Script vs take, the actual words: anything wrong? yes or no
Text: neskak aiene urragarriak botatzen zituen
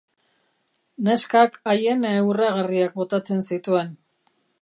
no